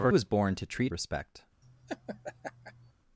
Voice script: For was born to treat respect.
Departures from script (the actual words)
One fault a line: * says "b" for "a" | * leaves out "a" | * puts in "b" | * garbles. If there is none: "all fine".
all fine